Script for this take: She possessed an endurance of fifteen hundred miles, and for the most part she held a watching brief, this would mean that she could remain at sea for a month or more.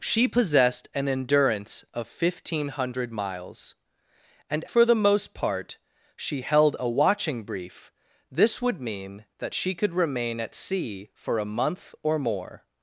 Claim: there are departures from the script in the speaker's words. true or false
false